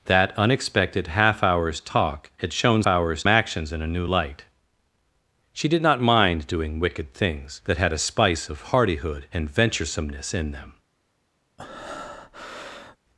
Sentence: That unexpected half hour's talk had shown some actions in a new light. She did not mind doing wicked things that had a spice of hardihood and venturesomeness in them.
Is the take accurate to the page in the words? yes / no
no